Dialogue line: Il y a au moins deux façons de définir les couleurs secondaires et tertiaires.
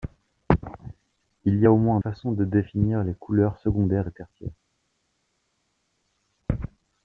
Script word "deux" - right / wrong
wrong